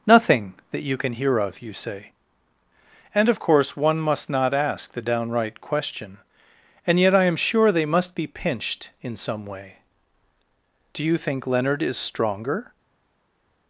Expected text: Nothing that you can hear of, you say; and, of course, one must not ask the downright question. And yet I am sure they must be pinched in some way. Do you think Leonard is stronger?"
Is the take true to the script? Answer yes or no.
yes